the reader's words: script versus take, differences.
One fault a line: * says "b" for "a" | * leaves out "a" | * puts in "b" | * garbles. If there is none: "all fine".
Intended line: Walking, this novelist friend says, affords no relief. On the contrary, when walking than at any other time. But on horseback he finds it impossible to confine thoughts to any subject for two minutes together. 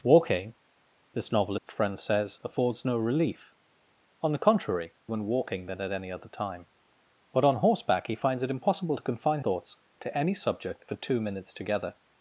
all fine